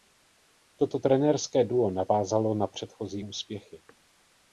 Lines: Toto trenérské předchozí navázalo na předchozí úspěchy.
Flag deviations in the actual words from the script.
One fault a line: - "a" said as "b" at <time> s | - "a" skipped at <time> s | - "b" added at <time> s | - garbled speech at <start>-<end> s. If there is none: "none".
- "předchozí" said as "duo" at 1.6 s